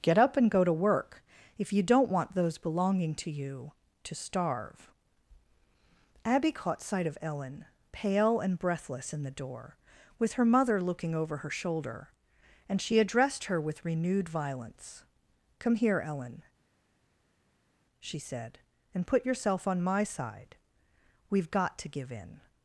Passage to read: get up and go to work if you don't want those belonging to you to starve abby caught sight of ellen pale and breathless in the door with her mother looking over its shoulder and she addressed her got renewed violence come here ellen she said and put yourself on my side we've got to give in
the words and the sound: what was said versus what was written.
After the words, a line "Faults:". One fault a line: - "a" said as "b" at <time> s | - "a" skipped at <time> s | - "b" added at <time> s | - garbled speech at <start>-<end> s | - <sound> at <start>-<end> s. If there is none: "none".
get up and go to work if you don't want those belonging to you to starve abby caught sight of ellen pale and breathless in the door with her mother looking over her shoulder and she addressed her with renewed violence come here ellen she said and put yourself on my side we've got to give in
Faults:
- "its" said as "her" at 11.4 s
- "got" said as "with" at 13.6 s